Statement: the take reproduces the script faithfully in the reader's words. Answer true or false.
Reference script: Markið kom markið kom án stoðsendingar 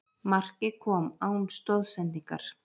false